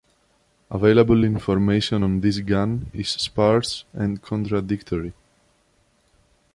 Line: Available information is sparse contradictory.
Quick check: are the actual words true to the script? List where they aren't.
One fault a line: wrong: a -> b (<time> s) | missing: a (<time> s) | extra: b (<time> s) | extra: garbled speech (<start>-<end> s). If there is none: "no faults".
extra: on this gun (2.0 s)
extra: and (3.9 s)